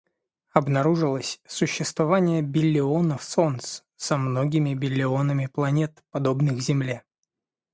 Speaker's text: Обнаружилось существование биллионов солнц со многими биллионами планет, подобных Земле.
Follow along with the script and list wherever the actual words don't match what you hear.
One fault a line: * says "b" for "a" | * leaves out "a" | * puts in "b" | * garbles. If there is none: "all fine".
all fine